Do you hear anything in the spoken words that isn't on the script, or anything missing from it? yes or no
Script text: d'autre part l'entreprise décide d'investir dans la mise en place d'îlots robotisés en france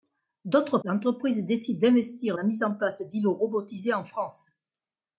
yes